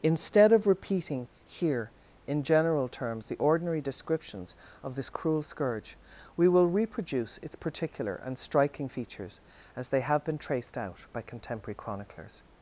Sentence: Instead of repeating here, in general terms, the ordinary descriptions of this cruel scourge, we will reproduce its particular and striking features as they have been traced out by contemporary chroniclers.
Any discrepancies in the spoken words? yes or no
no